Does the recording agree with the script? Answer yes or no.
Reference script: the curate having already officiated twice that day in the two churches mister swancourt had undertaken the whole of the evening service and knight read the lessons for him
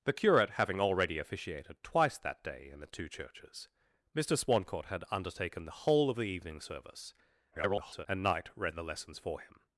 no